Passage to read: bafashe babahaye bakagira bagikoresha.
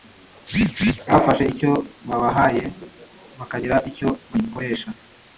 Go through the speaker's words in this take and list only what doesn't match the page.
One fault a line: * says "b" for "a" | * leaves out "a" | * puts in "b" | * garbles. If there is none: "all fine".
* puts in "icyo"
* puts in "icyo"